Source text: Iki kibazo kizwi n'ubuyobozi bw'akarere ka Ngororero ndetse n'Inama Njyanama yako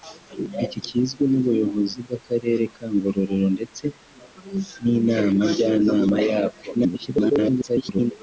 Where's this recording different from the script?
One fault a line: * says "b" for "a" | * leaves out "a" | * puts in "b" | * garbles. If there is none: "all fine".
* leaves out "kibazo"
* garbles